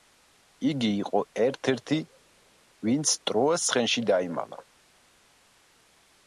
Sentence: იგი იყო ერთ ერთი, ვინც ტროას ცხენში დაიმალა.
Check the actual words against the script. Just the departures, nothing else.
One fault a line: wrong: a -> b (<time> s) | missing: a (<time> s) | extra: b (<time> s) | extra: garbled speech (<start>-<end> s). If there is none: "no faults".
no faults